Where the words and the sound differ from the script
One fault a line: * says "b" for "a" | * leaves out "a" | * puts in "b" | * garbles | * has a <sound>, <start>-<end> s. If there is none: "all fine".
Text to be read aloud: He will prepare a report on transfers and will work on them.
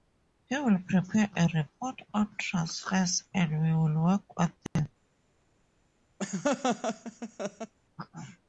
* puts in "we"
* has a dropout, 4.7-4.8 s
* has a laugh, 6.2-7.7 s